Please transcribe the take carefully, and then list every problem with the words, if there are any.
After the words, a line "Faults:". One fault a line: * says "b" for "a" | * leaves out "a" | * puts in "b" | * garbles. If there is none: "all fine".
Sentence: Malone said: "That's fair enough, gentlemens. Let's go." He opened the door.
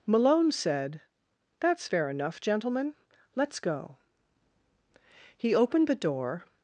Malone said: "That's fair enough, gentlemen. Let's go." He opened the door.
Faults:
* says "gentlemen" for "gentlemens"